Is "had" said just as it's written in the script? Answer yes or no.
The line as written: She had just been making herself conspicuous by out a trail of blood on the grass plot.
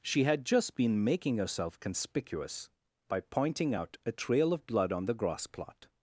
yes